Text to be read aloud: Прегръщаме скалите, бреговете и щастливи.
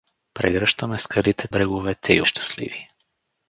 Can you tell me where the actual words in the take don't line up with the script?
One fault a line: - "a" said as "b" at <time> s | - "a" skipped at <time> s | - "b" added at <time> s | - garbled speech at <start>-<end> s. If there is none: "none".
none